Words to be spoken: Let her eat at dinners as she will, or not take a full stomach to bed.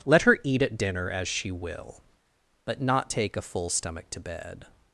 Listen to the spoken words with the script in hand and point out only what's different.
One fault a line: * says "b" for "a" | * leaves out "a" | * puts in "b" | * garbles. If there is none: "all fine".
* says "dinner" for "dinners"
* says "but" for "or"